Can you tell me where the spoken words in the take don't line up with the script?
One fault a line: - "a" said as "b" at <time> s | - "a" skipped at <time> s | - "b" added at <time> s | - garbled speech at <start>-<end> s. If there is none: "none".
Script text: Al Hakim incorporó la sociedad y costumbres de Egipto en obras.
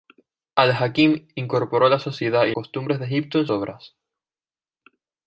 none